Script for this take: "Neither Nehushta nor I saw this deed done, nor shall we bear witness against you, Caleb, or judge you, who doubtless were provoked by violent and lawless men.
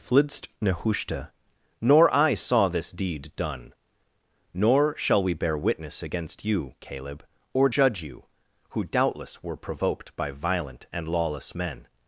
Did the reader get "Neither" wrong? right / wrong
wrong